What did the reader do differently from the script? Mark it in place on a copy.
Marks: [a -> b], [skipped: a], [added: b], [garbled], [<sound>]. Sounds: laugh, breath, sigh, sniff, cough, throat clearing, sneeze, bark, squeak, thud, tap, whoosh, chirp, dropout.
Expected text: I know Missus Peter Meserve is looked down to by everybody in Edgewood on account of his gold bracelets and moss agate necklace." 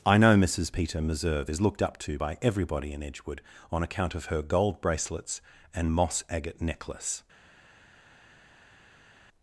I know Missus Peter Meserve is looked [down -> up] to by everybody in Edgewood on account of [his -> her] gold bracelets and moss agate necklace."